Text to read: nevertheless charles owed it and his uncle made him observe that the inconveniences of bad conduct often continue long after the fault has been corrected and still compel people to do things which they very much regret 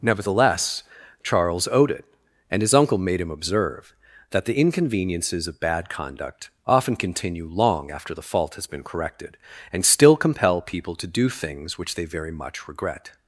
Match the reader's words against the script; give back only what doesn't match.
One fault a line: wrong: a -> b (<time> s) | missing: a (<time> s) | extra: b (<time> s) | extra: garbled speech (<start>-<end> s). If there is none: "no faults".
no faults